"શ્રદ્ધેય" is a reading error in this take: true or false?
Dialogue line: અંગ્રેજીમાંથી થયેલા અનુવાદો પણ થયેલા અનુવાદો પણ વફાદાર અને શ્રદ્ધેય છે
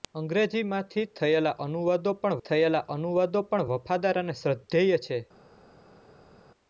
false